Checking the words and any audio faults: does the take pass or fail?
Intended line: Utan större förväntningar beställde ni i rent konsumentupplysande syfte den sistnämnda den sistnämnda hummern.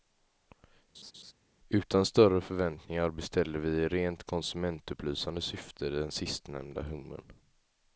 fail